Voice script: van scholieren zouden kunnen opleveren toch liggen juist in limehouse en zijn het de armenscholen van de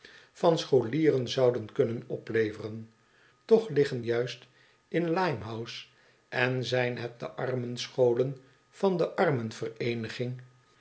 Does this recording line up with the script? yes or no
yes